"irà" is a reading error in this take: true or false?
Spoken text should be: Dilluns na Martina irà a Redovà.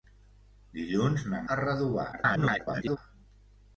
true